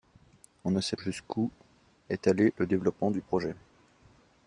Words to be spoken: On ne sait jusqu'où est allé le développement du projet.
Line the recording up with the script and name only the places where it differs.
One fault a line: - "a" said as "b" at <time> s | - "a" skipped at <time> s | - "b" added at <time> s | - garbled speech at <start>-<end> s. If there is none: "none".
none